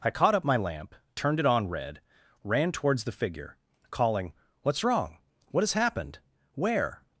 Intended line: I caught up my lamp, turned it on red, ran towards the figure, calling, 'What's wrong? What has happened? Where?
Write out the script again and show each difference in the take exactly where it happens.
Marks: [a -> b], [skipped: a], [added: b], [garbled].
I caught up my lamp, turned it on red, ran towards the figure, calling, 'What's wrong? What has happened? Where?